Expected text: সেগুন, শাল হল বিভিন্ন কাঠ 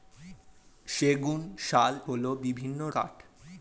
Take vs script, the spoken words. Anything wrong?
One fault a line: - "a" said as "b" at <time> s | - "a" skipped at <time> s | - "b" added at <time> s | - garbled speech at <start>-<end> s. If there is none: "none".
none